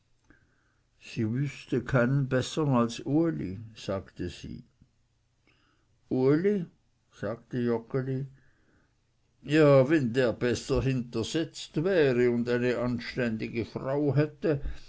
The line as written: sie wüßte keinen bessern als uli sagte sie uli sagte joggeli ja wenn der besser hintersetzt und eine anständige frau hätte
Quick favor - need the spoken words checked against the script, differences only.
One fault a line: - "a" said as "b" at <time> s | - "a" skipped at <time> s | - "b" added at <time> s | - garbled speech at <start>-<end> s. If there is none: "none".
- "wäre" added at 11.8 s